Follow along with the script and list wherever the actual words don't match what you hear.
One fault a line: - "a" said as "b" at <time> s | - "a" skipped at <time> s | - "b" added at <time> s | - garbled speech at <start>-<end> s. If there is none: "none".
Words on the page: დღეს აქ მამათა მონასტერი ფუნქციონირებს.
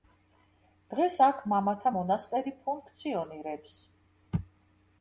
none